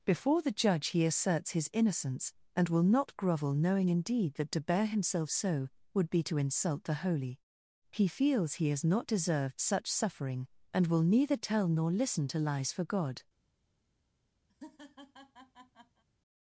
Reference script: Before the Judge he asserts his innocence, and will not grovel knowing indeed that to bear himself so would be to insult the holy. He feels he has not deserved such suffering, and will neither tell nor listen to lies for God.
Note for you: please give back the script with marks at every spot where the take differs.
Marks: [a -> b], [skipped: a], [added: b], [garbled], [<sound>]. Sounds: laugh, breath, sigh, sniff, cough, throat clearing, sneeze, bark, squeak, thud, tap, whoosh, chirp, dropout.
Before the Judge he asserts his innocence, and will not grovel knowing indeed that to bear himself so would be to insult the holy. He feels he has not deserved such suffering, and will neither tell nor listen to lies for God. [laugh]